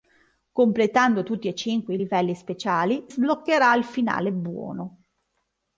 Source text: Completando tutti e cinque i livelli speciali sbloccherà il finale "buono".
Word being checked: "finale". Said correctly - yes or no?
yes